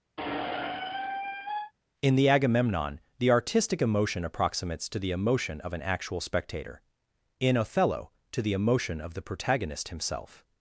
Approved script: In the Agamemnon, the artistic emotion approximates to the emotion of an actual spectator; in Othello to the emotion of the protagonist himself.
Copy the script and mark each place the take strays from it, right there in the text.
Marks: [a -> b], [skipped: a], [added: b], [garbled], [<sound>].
[squeak] In the Agamemnon, the artistic emotion approximates to the emotion of an actual spectator; in Othello to the emotion of the protagonist himself.